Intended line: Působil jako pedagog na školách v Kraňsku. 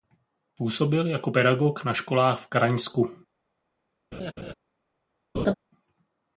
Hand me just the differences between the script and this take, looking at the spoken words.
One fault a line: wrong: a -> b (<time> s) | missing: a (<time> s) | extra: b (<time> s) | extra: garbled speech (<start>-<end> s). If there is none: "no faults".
no faults